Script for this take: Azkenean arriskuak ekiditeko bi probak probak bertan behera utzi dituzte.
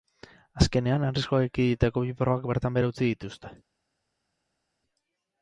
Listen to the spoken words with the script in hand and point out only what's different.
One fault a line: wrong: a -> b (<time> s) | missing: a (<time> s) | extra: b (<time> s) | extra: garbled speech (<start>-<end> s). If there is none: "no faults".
missing: probak (2.5 s)